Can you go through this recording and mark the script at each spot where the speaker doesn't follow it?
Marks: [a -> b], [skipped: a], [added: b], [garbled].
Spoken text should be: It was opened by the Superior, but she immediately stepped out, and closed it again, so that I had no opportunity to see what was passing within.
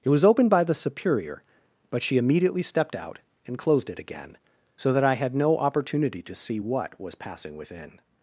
It was opened by the Superior, but she immediately stepped out, and closed it again, so that I had no opportunity to see what was passing within.